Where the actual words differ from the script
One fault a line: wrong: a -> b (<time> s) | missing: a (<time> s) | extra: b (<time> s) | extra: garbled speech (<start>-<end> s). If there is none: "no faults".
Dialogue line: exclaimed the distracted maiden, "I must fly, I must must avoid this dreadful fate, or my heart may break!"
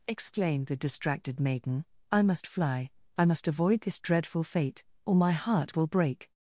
missing: must (3.5 s)
wrong: may -> will (5.8 s)